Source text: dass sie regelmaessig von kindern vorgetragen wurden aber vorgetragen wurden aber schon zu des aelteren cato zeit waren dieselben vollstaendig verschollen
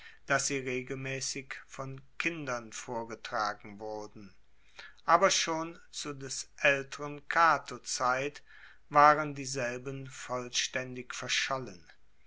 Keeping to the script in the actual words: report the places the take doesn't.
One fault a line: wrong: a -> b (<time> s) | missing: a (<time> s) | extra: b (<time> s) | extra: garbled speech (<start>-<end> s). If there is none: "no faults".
missing: vorgetragen wurden aber (5.3 s)